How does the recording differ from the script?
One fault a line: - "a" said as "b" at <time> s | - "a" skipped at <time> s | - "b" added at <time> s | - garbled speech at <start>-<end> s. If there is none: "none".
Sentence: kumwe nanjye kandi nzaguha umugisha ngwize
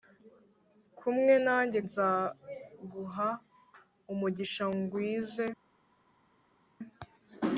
- "kandi" skipped at 1.8 s